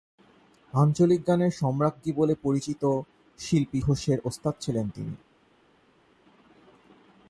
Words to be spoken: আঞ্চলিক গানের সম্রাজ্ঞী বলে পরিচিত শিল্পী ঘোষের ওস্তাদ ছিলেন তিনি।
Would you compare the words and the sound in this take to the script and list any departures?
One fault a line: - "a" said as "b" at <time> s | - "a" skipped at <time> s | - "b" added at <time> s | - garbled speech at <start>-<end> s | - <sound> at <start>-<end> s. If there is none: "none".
none